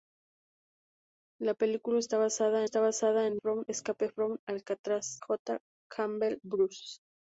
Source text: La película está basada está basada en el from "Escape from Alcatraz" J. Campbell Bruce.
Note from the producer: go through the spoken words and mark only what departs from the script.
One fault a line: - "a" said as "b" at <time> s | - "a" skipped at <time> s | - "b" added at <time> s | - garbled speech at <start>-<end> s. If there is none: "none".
none